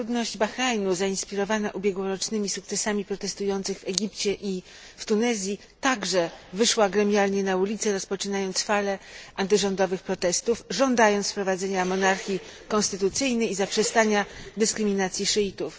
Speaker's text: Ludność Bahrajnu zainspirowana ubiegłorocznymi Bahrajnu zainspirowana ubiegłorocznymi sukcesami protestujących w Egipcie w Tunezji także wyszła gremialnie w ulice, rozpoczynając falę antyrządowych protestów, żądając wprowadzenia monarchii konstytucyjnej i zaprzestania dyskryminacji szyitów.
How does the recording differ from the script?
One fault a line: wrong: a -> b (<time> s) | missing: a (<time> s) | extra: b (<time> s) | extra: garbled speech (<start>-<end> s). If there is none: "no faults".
missing: Bahrajnu zainspirowana ubiegłorocznymi (2.5 s)
extra: i (4.3 s)
wrong: w -> na (7.4 s)